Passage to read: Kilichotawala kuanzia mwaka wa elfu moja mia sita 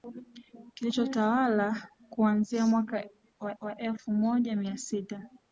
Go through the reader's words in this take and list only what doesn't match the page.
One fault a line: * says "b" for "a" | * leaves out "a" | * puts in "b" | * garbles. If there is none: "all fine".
* puts in "wa"